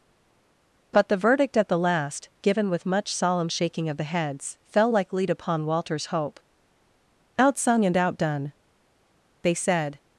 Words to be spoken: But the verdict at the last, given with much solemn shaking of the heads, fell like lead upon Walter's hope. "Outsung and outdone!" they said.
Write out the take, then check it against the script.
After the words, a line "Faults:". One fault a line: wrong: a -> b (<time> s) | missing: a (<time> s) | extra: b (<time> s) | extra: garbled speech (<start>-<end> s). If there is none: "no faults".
But the verdict at the last, given with much solemn shaking of the heads, fell like lead upon Walter's hope. "Outsung and outdone!" they said.
Faults:
no faults